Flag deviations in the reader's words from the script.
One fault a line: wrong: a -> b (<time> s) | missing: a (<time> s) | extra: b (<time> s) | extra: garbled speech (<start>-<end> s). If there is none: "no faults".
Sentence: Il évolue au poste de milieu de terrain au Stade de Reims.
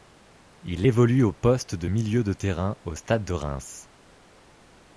no faults